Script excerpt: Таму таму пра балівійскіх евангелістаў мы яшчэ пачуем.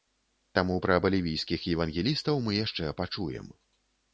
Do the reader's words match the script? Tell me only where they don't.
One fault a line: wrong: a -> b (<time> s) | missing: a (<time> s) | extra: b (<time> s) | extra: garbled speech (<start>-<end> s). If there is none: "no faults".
missing: таму (0.8 s)